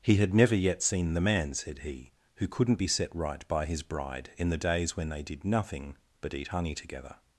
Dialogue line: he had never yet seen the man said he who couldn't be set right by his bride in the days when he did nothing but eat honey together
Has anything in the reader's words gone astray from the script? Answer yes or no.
yes